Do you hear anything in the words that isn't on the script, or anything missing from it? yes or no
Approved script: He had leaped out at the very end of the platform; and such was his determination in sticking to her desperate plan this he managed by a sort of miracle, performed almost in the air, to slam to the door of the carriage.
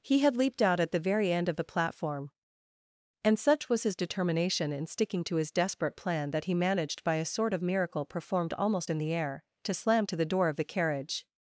yes